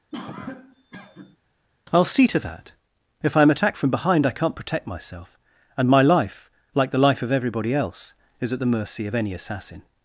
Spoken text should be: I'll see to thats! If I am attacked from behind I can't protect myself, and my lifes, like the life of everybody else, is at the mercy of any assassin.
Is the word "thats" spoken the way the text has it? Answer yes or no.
no